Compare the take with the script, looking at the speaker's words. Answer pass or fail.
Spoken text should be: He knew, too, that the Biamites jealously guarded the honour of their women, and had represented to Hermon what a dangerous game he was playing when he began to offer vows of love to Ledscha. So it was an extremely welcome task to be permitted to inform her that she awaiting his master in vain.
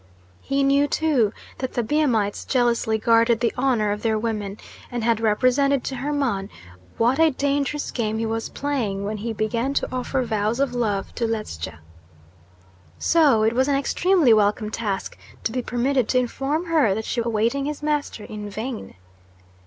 pass